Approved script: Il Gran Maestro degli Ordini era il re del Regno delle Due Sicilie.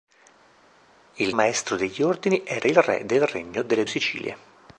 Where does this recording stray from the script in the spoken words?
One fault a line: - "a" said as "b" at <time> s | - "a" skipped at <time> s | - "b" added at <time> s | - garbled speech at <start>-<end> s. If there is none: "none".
- "Gran" skipped at 1.3 s
- "Due" skipped at 3.8 s